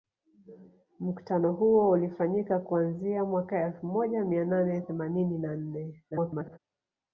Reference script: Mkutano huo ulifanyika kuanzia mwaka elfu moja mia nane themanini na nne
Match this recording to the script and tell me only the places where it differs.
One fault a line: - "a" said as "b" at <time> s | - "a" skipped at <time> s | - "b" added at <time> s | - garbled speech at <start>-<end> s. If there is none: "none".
- garbled speech at 6.1-6.6 s